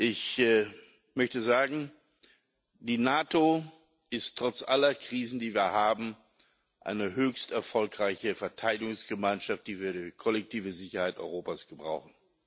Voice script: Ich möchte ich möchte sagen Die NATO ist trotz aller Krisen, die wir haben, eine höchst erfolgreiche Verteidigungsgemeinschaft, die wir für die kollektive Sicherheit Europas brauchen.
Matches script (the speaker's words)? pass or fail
fail